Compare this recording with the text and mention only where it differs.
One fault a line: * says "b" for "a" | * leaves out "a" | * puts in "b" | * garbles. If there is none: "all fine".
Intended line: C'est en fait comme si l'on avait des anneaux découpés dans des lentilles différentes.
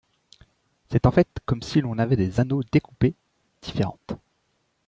* leaves out "dans des lentilles"